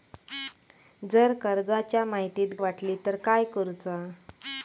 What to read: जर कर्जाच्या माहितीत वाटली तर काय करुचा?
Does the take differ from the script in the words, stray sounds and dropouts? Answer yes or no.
no